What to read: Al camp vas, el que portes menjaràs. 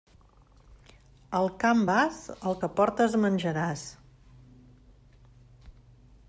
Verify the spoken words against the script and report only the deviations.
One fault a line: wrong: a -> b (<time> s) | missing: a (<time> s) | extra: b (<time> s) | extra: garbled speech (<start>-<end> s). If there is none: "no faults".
no faults